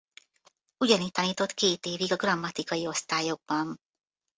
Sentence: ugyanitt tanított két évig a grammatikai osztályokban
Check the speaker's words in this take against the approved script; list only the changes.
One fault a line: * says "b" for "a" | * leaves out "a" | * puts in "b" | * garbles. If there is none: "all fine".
all fine